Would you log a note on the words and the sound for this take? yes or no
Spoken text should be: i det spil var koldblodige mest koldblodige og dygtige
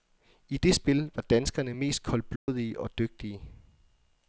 yes